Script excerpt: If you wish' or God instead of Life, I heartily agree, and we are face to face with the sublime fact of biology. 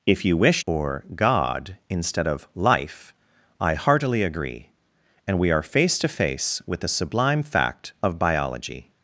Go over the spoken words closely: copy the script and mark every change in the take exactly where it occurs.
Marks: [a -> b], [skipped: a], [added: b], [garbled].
If you wish' or God instead of Life, I heartily agree, and we are face to face with the sublime fact of biology.